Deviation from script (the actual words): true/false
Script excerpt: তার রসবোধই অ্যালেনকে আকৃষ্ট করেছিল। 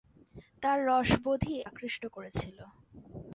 true